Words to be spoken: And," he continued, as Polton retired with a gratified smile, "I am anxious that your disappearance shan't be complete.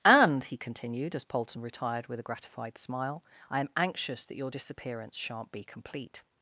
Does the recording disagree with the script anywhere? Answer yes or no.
no